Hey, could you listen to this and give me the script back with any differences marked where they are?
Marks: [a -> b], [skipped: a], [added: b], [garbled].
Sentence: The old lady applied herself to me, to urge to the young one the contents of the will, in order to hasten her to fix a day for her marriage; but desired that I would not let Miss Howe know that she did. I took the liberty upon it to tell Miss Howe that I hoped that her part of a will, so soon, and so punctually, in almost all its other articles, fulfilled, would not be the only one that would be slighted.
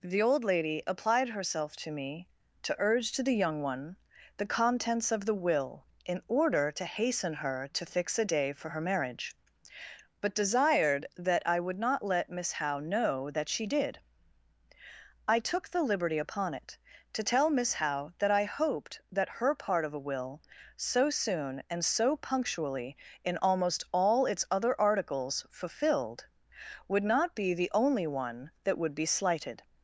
The old lady applied herself to me, to urge to the young one the contents of the will, in order to hasten her to fix a day for her marriage; but desired that I would not let Miss Howe know that she did. I took the liberty upon it to tell Miss Howe that I hoped that her part of a will, so soon, and so punctually, in almost all its other articles, fulfilled, would not be the only one that would be slighted.